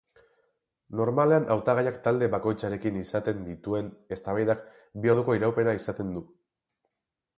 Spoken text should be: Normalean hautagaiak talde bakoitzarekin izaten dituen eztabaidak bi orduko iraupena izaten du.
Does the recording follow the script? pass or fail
pass